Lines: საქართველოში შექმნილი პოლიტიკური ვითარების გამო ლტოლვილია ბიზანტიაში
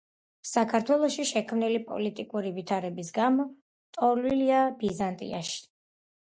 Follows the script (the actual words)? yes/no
yes